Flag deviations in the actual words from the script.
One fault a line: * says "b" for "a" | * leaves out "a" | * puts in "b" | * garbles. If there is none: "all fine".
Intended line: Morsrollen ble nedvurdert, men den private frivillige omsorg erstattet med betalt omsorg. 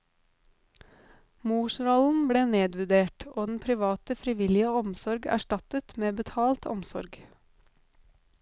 * says "og" for "men"